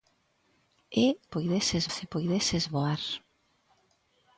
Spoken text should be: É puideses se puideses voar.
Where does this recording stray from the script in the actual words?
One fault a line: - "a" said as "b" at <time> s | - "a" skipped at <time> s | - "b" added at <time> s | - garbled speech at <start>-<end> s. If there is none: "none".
none